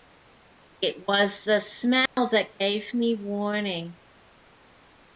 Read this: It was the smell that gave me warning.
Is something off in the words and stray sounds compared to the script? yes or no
yes